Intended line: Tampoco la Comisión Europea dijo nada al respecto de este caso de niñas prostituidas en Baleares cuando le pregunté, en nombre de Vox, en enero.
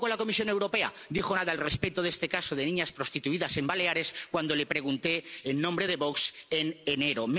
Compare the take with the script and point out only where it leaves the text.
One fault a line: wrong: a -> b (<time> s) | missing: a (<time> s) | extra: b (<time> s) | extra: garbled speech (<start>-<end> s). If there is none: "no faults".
no faults